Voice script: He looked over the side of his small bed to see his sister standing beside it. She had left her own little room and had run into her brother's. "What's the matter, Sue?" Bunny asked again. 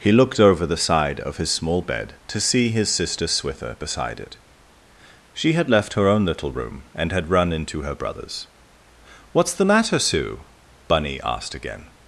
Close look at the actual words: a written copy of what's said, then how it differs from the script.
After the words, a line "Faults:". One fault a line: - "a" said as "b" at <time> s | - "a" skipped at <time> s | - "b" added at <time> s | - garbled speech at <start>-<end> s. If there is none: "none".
He looked over the side of his small bed to see his sister swither beside it. She had left her own little room and had run into her brother's. "What's the matter, Sue?" Bunny asked again.
Faults:
- "standing" said as "swither" at 3.3 s